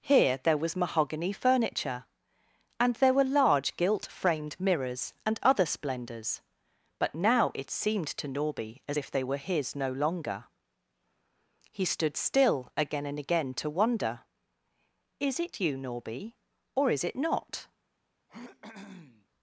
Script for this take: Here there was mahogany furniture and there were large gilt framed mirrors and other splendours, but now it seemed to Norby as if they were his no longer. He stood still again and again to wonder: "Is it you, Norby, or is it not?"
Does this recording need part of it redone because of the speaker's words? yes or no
no